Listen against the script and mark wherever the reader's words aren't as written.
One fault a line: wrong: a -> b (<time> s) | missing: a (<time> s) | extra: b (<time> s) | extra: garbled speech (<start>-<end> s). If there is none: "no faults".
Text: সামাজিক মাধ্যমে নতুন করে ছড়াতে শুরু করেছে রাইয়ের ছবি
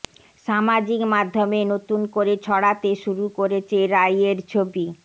no faults